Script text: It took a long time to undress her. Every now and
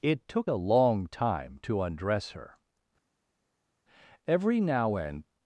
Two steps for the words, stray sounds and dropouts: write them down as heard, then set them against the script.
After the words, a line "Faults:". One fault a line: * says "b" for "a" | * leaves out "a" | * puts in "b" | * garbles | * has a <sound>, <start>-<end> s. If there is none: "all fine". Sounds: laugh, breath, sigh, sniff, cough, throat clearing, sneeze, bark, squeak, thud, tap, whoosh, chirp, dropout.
It took a long time to undress her. Every now and
Faults:
all fine